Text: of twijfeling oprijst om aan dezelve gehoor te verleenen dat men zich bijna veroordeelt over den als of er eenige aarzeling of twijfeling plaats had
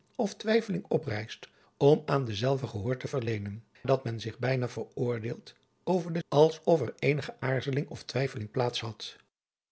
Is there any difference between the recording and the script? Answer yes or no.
no